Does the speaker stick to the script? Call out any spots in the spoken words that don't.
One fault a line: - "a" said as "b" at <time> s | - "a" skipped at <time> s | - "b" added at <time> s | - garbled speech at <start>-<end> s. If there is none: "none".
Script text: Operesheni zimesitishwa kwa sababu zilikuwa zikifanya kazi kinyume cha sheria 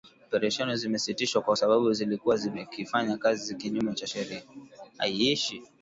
none